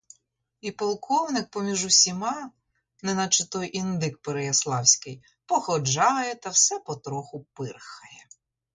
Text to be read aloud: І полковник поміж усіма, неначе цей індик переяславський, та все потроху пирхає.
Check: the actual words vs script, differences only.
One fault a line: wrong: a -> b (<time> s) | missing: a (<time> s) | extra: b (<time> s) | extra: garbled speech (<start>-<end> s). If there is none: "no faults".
wrong: цей -> той (3.5 s)
extra: походжає (5.5 s)